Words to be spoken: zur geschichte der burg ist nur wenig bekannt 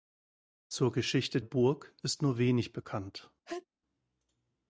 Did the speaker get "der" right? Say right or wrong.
wrong